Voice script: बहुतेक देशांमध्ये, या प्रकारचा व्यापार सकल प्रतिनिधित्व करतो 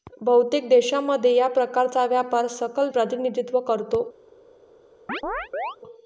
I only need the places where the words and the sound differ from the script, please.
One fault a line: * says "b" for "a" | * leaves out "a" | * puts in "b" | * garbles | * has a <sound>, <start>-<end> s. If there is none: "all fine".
* has a chirp, 5.1-5.8 s